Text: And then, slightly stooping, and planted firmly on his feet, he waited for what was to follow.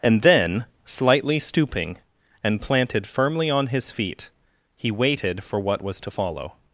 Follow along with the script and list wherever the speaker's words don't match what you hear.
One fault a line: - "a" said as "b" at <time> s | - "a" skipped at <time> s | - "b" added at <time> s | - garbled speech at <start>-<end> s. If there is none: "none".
none